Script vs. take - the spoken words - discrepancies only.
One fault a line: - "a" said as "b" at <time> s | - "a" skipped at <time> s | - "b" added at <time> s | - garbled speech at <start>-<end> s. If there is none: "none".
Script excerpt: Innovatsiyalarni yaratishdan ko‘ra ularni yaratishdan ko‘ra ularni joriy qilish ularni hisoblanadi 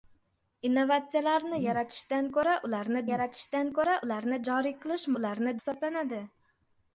none